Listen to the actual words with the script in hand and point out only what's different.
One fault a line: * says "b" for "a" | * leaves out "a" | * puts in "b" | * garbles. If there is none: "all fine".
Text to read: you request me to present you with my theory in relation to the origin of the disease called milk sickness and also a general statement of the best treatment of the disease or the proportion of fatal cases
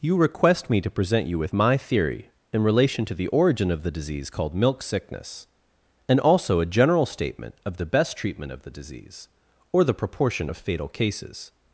all fine